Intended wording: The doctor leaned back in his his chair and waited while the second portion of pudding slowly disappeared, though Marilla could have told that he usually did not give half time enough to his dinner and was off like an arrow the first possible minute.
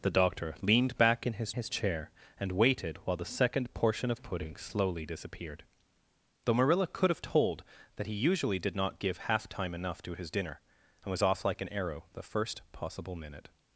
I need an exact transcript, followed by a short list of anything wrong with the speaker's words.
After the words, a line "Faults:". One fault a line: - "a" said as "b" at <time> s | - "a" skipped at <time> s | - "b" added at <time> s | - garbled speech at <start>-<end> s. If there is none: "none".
The doctor leaned back in his his chair and waited while the second portion of pudding slowly disappeared, though Marilla could have told that he usually did not give half time enough to his dinner and was off like an arrow the first possible minute.
Faults:
none